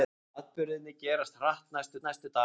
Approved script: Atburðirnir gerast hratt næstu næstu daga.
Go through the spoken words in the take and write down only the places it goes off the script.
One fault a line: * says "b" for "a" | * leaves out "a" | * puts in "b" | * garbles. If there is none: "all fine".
all fine